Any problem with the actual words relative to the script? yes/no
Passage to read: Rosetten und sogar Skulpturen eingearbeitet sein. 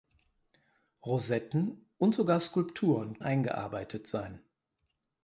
no